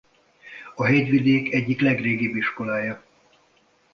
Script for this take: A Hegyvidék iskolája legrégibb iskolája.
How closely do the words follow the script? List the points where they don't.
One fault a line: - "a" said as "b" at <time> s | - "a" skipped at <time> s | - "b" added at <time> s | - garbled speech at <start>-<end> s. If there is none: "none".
- "iskolája" said as "egyik" at 1.5 s